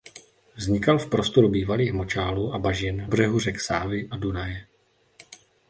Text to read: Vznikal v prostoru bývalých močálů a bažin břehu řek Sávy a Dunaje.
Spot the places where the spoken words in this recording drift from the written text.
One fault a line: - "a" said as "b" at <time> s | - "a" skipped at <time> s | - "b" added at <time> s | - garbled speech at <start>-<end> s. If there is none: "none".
none